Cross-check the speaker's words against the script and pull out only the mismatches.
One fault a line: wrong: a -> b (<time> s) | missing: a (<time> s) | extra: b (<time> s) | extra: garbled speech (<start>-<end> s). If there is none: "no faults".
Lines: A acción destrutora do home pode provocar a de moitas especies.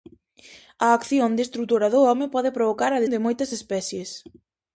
no faults